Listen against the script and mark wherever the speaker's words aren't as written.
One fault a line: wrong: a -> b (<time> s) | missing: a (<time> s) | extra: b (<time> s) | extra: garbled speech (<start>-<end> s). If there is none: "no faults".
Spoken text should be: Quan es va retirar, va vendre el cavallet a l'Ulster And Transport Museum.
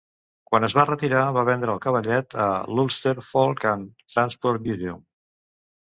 extra: Folk (3.3 s)